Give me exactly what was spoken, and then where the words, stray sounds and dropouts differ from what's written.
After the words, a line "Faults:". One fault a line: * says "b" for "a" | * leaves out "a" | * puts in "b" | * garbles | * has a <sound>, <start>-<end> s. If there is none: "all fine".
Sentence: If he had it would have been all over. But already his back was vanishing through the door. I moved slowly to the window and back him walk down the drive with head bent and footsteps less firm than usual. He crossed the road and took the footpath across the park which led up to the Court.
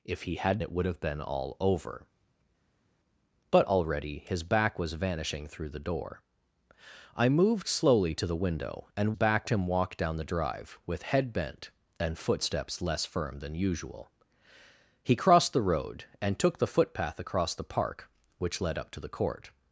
If he had it would have been all over. But already his back was vanishing through the door. I moved slowly to the window and back him walk down the drive with head bent and footsteps less firm than usual. He crossed the road and took the footpath across the park which led up to the Court.
Faults:
all fine